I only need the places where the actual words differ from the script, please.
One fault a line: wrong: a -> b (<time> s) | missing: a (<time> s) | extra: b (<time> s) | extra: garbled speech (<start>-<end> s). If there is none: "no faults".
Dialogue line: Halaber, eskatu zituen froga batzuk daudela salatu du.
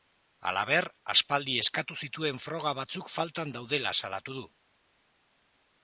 extra: aspaldi (1.1 s)
extra: faltan (3.2 s)